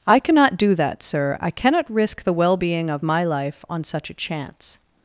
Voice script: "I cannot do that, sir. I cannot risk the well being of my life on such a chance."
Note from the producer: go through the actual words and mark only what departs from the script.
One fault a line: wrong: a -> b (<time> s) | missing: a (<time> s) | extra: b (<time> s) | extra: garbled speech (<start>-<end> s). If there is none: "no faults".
no faults